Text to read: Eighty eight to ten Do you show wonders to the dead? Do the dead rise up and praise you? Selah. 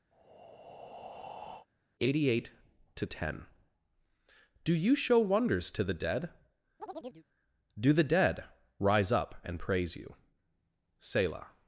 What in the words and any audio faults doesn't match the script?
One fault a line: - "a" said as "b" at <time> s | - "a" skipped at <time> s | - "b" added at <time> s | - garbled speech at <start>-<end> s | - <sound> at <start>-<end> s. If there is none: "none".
- breath at 0.1-1.7 s
- chirp at 6.8-7.3 s